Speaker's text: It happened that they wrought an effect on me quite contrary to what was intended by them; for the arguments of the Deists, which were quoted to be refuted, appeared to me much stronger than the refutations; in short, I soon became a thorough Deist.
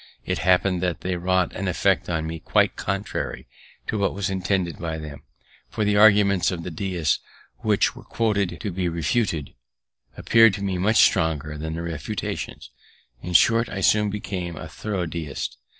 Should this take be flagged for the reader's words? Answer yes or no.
no